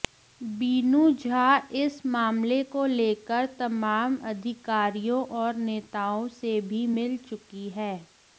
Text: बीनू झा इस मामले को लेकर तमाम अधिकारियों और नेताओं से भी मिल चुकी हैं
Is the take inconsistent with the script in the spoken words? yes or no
no